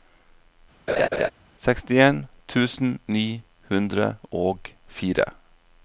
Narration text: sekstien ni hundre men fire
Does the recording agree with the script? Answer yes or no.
no